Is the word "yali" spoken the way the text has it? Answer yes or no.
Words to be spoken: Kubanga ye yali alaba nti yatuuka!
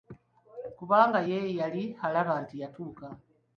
yes